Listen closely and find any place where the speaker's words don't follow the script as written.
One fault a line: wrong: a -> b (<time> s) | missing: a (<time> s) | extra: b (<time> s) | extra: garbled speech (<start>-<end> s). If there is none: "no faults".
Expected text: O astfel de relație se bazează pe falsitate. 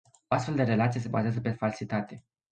no faults